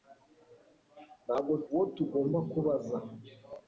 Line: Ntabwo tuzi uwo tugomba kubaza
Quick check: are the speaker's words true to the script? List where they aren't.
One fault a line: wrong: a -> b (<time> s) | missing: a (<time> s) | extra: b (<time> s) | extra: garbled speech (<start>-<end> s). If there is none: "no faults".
missing: tuzi (1.5 s)